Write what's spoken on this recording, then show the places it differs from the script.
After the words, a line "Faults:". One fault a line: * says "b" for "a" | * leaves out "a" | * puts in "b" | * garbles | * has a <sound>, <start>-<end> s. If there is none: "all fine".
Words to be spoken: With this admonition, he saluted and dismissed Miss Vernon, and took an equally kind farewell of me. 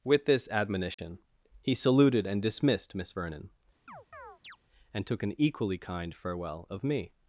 With this admonition, he saluted and dismissed Miss Vernon, and took an equally kind farewell of me.
Faults:
* has a dropout, 0.9-1.0 s
* has a chirp, 3.9-4.6 s